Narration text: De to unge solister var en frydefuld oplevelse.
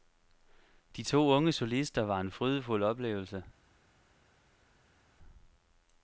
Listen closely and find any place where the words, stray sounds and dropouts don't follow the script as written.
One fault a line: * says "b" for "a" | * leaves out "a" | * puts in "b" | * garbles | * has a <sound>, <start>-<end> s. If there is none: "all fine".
all fine